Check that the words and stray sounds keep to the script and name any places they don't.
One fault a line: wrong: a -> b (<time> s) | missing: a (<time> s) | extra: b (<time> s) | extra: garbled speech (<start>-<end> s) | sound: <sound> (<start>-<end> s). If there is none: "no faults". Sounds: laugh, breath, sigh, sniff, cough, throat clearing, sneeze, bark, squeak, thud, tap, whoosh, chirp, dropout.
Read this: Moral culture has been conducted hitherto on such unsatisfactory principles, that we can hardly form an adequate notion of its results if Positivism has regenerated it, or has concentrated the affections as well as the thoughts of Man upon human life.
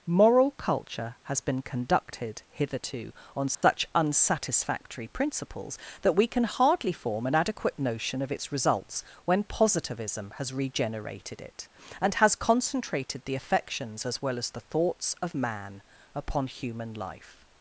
sound: dropout (3.5-3.6 s)
wrong: if -> when (9.3 s)
wrong: or -> and (12.0 s)